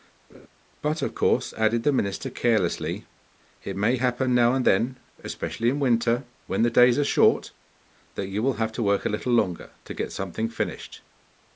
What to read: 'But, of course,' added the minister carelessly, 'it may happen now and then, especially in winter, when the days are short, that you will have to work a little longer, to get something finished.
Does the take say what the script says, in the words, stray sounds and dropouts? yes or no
no